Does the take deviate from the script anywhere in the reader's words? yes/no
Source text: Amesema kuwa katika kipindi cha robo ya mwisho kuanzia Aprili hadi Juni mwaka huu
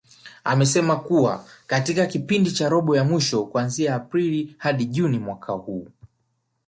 no